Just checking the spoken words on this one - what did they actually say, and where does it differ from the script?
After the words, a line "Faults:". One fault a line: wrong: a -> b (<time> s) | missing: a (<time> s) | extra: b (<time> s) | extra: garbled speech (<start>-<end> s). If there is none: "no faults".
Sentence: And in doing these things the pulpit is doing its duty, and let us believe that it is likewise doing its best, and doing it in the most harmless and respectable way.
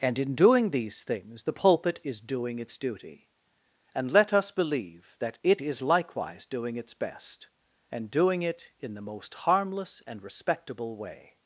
And in doing these things the pulpit is doing its duty, and let us believe that it is likewise doing its best, and doing it in the most harmless and respectable way.
Faults:
no faults